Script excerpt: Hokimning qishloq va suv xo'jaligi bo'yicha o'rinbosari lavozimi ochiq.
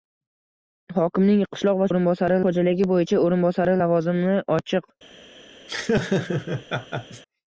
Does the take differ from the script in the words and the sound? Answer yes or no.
yes